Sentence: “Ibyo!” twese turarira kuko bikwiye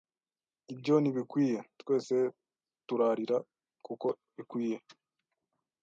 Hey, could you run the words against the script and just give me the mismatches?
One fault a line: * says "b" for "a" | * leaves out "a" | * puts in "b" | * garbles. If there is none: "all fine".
* puts in "ntibikwiye"